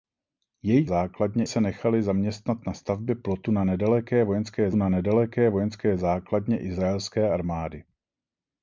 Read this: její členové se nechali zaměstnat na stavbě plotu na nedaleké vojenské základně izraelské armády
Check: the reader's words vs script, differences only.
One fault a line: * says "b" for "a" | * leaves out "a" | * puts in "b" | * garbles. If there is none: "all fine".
* says "základně" for "členové"
* puts in "na nedaleké vojenské"